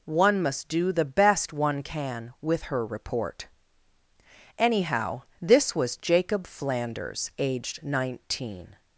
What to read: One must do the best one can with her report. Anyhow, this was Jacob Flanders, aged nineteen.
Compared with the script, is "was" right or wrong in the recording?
right